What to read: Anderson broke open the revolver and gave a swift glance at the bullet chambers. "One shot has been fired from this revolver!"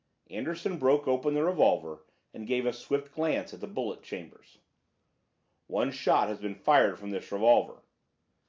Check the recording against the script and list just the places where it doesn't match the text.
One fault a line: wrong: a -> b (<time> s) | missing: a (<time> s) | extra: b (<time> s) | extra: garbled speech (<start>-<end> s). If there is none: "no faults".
no faults